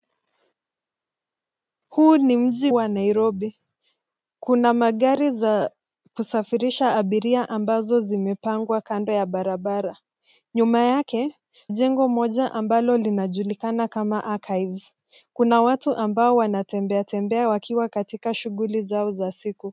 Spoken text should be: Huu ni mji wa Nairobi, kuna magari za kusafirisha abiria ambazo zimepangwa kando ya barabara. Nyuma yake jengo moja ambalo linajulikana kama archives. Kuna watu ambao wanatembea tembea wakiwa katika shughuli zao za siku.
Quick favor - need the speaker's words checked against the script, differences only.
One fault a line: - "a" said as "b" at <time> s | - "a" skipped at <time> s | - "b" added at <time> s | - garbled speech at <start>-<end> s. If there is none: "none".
none